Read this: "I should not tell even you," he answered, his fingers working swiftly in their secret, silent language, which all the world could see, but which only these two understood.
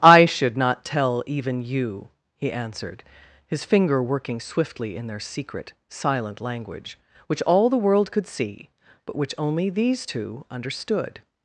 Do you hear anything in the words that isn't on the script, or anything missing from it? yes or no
yes